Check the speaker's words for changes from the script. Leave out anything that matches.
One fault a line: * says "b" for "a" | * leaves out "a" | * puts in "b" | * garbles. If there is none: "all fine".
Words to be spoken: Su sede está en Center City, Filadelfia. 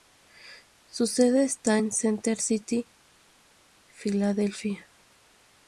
all fine